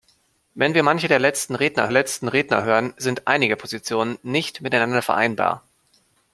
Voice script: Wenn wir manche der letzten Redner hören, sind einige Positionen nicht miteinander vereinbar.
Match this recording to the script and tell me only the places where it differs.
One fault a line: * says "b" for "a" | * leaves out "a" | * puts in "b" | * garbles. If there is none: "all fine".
* puts in "letzten Redner"